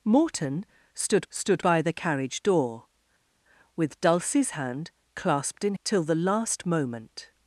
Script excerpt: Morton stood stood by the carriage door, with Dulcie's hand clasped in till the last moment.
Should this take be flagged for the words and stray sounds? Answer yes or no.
no